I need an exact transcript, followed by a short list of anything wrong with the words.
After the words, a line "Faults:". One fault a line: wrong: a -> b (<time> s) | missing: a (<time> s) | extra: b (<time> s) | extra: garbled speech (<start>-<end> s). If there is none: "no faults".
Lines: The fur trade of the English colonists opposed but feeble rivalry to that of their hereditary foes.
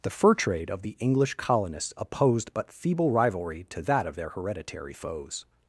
The fur trade of the English colonists opposed but feeble rivalry to that of their hereditary foes.
Faults:
no faults